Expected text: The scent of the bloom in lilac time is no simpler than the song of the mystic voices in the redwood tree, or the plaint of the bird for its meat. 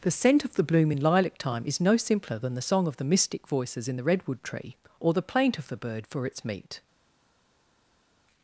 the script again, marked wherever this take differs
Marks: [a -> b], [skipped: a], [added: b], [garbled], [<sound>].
The scent of the bloom in lilac time is no simpler than the song of the mystic voices in the redwood tree, or the plaint of the bird for its meat.